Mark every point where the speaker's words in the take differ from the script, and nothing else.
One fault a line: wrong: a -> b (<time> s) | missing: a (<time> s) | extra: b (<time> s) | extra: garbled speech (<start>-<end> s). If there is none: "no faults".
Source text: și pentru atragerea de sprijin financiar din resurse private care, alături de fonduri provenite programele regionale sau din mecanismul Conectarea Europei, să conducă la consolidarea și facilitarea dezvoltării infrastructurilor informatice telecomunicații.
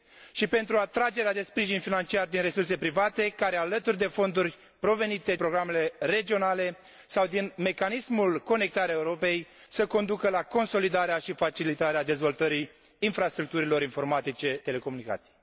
no faults